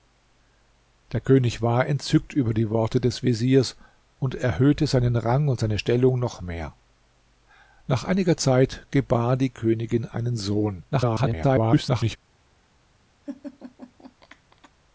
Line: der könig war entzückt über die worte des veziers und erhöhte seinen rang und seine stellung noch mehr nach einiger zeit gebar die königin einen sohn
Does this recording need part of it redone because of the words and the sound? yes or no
yes